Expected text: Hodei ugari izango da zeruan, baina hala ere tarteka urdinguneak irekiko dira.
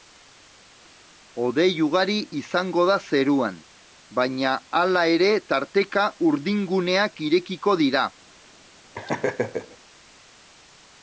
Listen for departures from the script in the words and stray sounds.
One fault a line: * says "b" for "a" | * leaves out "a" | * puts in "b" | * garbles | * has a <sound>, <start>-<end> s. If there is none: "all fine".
* has a laugh, 8.9-9.8 s